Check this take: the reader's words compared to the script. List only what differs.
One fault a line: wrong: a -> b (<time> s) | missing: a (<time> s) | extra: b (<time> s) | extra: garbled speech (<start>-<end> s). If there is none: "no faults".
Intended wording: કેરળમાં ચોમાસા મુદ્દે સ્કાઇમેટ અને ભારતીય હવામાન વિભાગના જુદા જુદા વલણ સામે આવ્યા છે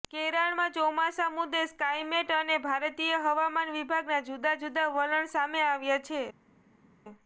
no faults